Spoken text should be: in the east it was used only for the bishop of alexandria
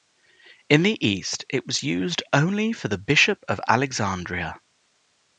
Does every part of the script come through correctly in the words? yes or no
yes